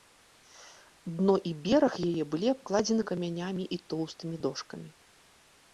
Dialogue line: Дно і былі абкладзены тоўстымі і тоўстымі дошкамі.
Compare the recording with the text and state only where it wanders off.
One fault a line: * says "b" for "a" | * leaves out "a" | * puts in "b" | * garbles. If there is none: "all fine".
* puts in "бераг яе"
* says "камянямі" for "тоўстымі"